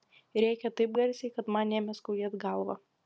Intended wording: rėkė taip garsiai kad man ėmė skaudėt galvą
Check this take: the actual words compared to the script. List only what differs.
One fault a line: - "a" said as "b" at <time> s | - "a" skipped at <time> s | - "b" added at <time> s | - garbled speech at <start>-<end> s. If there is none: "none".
none